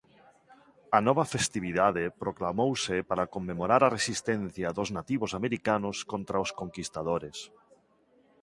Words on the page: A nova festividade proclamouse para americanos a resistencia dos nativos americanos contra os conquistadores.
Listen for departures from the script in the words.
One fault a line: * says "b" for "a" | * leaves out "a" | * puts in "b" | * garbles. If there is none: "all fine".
* says "conmemorar" for "americanos"